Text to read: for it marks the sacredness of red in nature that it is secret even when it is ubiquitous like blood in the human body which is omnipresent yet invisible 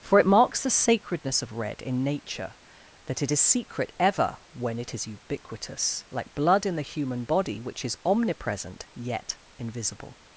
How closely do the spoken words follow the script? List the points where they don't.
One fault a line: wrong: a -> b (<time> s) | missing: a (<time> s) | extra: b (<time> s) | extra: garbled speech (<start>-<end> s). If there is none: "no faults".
wrong: even -> ever (4.0 s)